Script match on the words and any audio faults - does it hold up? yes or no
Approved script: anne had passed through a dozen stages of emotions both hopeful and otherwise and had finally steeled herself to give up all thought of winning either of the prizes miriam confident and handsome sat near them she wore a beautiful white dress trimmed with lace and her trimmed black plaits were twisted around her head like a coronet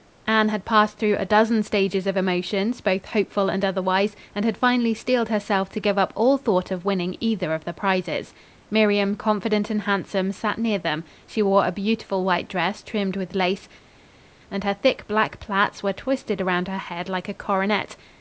no